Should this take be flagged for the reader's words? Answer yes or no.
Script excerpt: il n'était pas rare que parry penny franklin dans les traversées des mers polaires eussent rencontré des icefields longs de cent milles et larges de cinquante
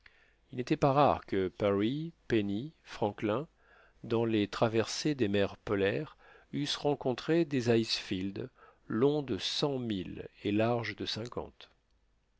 no